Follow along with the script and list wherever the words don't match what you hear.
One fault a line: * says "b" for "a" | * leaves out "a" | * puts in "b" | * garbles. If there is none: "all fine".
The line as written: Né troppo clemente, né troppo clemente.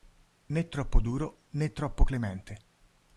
* says "duro" for "clemente"